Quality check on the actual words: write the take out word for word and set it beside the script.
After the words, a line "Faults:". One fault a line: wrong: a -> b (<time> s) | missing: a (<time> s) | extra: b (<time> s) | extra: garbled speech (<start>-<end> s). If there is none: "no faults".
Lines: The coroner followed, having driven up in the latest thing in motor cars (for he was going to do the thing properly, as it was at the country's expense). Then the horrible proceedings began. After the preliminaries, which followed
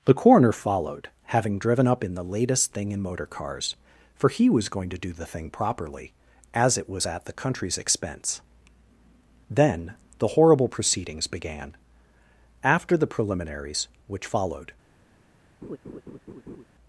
The coroner followed, having driven up in the latest thing in motor cars (for he was going to do the thing properly, as it was at the country's expense). Then the horrible proceedings began. After the preliminaries, which followed
Faults:
no faults